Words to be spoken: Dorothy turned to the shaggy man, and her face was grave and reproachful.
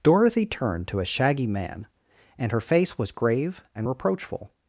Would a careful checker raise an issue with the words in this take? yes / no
yes